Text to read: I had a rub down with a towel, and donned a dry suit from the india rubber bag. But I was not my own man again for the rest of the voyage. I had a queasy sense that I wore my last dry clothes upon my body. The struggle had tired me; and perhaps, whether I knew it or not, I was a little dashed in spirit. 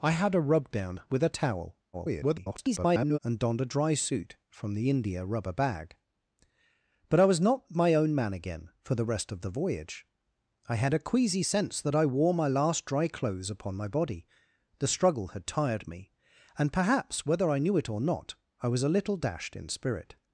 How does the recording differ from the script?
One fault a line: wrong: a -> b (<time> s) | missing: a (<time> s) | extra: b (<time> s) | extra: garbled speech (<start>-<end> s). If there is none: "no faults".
extra: garbled speech (1.9-3.2 s)